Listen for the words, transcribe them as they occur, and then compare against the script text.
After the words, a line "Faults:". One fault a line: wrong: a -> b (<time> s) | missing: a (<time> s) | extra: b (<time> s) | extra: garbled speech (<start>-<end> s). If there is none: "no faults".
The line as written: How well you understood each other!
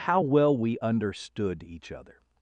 How well we understood each other!
Faults:
wrong: you -> we (0.6 s)